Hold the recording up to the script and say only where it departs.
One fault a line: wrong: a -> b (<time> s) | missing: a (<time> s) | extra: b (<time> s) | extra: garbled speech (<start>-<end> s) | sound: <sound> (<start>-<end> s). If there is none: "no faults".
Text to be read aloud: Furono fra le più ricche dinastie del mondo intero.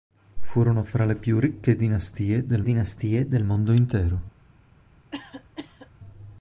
extra: dinastie del (2.6 s)
sound: cough (5.1-5.9 s)